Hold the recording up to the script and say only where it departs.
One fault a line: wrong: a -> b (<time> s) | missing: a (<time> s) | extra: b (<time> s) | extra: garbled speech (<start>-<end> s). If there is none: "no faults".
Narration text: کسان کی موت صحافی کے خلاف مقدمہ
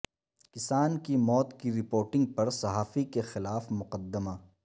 extra: کی رپورٹنگ پر (1.6 s)